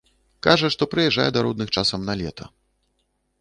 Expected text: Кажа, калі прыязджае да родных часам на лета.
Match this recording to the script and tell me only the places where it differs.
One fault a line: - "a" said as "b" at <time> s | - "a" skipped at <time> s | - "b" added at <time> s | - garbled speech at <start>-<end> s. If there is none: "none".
- "калі" said as "што" at 0.8 s